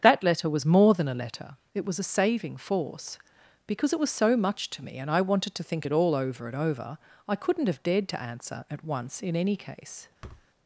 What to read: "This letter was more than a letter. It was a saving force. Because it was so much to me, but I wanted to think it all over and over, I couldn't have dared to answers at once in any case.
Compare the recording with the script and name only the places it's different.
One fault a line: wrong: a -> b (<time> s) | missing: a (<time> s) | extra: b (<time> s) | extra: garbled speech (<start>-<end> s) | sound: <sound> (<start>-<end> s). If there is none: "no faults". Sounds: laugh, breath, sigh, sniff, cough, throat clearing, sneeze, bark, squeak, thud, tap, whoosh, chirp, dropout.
wrong: This -> That (0.0 s)
wrong: but -> and (5.0 s)
wrong: answers -> answer (8.2 s)
sound: thud (10.2-10.5 s)